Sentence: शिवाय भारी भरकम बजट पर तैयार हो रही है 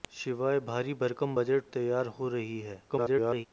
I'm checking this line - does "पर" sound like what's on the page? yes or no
no